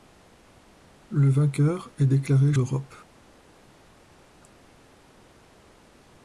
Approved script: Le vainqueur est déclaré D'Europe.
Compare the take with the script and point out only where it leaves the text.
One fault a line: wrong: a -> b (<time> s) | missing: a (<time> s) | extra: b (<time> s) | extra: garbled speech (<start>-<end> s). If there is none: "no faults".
no faults